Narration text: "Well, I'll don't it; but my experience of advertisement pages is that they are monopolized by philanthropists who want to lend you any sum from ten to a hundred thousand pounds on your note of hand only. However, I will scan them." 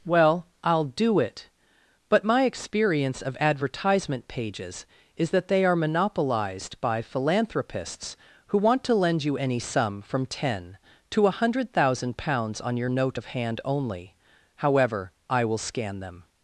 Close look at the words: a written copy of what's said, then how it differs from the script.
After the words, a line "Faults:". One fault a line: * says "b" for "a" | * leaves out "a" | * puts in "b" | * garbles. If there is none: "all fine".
"Well, I'll do it; but my experience of advertisement pages is that they are monopolized by philanthropists who want to lend you any sum from ten to a hundred thousand pounds on your note of hand only. However, I will scan them."
Faults:
* says "do" for "don't"